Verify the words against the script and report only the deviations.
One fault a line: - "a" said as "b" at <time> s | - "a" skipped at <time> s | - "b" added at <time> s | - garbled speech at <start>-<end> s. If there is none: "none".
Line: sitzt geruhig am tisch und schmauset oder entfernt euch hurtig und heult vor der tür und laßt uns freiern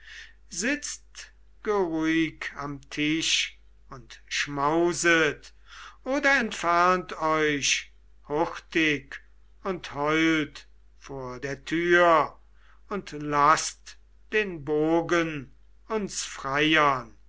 - "den bogen" added at 14.3 s